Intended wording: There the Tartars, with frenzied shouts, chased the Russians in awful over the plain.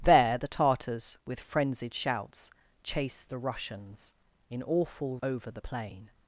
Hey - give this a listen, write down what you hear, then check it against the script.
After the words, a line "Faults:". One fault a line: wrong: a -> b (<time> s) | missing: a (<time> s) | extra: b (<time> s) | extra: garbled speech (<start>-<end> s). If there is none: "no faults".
There the Tartars, with frenzied shouts, chased the Russians in awful over the plain.
Faults:
no faults